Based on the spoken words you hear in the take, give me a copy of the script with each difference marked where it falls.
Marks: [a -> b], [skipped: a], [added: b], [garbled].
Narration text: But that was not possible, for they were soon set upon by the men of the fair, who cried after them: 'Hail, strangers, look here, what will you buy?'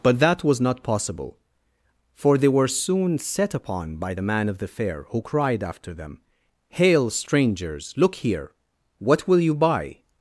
But that was not possible, for they were soon set upon by the [men -> man] of the fair, who cried after them: 'Hail, strangers, look here, what will you buy?'